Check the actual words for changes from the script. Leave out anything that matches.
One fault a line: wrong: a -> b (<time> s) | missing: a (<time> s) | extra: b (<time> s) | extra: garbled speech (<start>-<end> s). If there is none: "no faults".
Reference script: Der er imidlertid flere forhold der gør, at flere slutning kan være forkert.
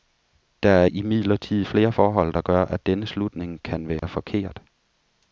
wrong: flere -> denne (2.9 s)